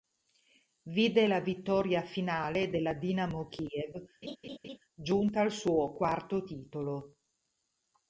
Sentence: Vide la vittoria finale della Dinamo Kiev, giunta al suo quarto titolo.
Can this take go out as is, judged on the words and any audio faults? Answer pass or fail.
fail